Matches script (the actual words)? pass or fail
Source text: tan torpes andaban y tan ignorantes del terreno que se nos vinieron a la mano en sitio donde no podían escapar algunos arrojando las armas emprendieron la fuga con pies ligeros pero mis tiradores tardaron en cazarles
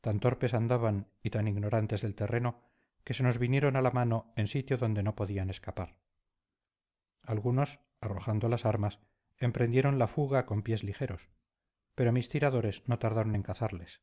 fail